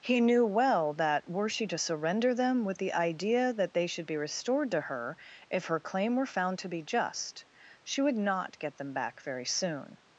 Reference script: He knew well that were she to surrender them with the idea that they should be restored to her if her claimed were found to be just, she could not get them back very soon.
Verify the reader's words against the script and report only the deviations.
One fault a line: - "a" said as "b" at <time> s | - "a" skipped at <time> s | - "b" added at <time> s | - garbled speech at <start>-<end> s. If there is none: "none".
- "claimed" said as "claim" at 5.8 s
- "could" said as "would" at 8.0 s